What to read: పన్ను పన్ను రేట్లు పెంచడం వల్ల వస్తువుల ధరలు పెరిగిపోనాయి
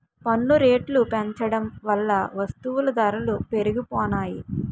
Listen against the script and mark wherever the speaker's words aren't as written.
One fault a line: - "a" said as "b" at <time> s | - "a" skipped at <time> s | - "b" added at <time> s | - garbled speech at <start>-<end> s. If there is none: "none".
- "పన్ను" skipped at 0.6 s